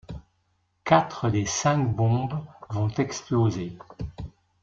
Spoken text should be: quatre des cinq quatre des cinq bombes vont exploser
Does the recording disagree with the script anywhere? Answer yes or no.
yes